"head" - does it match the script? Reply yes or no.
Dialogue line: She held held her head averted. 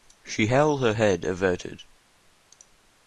yes